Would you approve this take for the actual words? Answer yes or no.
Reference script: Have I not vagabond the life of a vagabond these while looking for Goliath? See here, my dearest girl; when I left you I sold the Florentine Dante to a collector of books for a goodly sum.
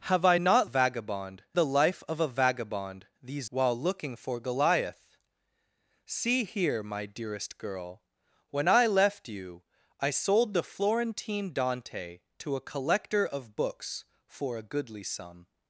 yes